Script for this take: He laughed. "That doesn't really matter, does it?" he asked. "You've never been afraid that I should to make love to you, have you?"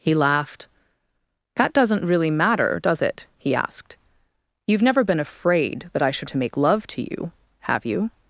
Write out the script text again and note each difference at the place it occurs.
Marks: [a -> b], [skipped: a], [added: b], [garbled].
He laughed. "That doesn't really matter, does it?" he asked. "You've never been afraid that I should to make love to you, have you?"